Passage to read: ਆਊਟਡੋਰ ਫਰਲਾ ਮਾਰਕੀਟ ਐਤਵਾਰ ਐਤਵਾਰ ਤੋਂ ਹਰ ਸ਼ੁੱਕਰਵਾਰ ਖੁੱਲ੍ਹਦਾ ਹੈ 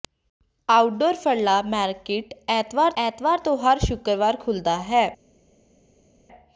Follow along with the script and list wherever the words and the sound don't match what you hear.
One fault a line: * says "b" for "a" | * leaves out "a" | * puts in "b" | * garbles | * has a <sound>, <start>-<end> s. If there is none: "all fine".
all fine